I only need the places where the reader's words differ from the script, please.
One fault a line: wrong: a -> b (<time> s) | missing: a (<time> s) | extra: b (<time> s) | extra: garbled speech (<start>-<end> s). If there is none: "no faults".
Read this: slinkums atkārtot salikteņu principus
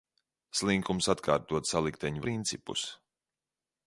no faults